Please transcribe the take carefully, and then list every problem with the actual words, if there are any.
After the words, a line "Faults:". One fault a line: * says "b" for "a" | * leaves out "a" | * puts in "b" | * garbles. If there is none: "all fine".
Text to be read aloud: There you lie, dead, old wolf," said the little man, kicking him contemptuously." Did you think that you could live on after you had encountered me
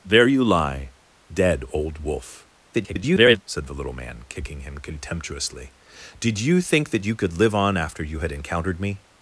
There you lie, dead, old wolf," [garbled] said the little man, kicking him contemptuously." Did you think that you could live on after you had encountered me
Faults:
* garbles